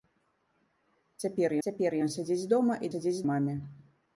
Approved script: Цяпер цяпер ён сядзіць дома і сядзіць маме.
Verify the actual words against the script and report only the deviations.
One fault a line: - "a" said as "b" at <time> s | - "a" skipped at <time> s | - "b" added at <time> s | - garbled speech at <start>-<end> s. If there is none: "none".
none